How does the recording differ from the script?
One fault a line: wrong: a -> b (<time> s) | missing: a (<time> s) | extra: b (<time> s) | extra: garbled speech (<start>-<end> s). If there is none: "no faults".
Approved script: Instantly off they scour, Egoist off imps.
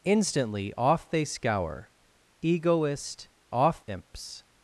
no faults